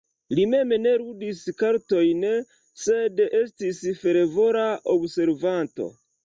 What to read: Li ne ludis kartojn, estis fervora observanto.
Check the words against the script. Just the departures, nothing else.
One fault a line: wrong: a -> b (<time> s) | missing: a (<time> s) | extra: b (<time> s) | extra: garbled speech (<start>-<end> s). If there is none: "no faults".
extra: mem (0.5 s)
extra: sed (2.9 s)